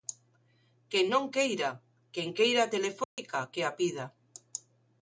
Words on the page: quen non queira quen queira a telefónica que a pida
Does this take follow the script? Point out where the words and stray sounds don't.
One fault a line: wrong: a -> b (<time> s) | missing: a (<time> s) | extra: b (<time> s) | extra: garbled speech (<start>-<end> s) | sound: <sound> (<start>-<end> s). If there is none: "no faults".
sound: dropout (3.0-3.2 s)